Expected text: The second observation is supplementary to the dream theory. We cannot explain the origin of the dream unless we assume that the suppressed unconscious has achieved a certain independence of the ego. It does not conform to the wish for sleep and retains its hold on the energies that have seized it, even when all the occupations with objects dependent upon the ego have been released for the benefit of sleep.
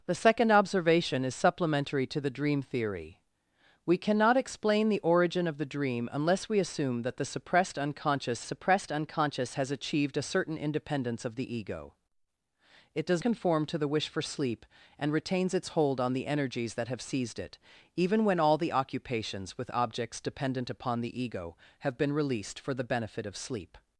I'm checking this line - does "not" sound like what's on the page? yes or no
no